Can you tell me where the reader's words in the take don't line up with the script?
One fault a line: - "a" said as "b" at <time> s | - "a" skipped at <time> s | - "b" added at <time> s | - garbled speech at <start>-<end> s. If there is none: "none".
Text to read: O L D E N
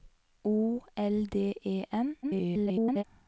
- garbled speech at 2.2-3.0 s